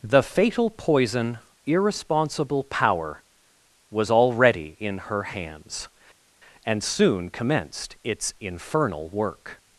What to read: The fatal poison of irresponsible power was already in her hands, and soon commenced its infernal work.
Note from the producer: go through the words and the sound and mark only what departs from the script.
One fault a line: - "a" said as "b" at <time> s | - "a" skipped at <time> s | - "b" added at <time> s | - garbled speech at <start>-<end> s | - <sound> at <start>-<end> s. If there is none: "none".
- "of" skipped at 1.4 s